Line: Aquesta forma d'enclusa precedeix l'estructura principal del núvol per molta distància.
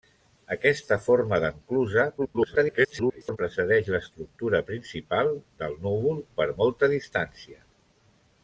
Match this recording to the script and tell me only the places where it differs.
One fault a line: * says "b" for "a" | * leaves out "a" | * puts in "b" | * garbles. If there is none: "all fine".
* garbles